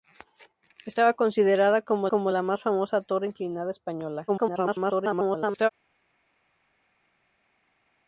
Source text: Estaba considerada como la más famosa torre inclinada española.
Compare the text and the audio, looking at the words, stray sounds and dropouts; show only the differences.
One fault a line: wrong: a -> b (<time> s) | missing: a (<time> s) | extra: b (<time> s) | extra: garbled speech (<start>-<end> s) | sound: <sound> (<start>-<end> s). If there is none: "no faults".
extra: como (2.1 s)
extra: garbled speech (4.3-5.7 s)